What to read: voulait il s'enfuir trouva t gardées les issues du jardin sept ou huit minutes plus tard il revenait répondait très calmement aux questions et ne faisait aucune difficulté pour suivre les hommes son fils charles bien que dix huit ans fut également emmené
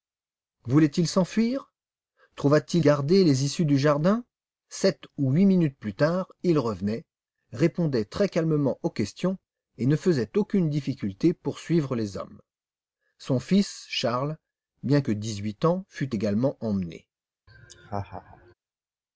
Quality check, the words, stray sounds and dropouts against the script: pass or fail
fail